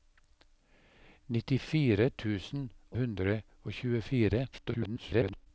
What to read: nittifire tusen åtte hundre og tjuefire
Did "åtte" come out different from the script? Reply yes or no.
yes